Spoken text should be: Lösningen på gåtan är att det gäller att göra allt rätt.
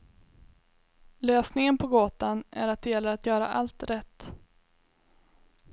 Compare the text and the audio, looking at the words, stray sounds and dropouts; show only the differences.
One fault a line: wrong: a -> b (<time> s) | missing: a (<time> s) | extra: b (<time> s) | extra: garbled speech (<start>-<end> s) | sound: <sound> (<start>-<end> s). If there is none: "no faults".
no faults